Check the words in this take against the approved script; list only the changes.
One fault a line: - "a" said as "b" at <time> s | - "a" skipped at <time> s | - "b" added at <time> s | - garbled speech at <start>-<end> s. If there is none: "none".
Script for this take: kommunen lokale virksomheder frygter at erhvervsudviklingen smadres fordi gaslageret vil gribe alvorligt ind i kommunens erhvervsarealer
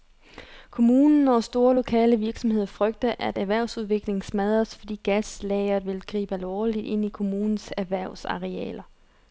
- "og store" added at 1.3 s